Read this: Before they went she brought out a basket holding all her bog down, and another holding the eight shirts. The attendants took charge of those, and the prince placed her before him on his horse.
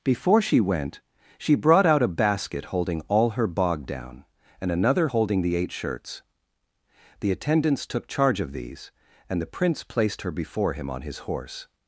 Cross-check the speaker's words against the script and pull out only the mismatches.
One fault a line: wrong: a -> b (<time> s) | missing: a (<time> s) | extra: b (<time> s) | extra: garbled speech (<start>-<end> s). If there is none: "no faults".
wrong: they -> she (0.4 s)
wrong: those -> these (8.5 s)